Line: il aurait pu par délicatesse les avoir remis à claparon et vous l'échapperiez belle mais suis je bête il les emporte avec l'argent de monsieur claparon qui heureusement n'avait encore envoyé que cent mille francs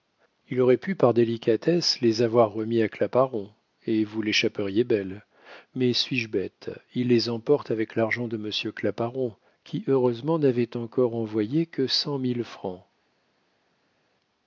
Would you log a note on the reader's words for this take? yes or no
no